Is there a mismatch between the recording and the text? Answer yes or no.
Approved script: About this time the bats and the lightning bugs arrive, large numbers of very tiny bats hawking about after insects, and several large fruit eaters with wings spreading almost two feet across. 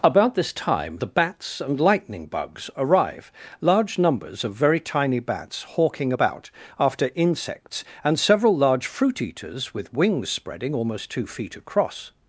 yes